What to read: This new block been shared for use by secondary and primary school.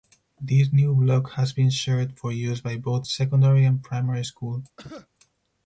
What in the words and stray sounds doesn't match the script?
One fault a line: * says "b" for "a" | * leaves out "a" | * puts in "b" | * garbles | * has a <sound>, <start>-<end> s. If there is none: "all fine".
* puts in "has"
* puts in "both"
* has a cough, 4.8-5.1 s